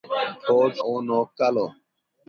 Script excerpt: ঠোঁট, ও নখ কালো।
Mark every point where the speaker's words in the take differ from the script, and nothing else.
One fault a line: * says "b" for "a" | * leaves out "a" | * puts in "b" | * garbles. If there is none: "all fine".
all fine